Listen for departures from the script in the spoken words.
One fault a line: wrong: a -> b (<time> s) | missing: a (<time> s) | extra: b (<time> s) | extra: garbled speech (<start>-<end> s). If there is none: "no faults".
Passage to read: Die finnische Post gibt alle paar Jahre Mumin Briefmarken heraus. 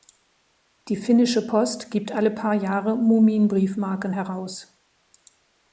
no faults